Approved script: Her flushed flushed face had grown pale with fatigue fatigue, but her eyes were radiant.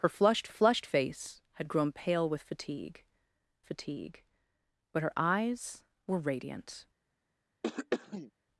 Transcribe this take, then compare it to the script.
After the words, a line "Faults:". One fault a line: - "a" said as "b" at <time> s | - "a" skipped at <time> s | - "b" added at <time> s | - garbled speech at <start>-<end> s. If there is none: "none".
Her flushed flushed face had grown pale with fatigue fatigue, but her eyes were radiant.
Faults:
none